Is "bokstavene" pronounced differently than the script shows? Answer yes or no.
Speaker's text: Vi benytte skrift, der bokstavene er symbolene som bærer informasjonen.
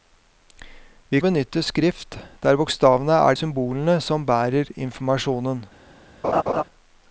no